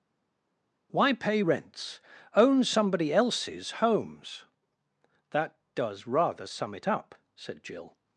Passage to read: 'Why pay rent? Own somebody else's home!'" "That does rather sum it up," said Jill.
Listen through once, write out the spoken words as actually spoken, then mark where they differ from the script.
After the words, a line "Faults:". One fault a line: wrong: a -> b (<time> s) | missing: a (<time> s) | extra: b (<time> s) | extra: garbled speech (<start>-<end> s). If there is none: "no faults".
'Why pay rents? Own somebody else's homes!'" "That does rather sum it up," said Jill.
Faults:
wrong: rent -> rents (1.4 s)
wrong: home -> homes (3.7 s)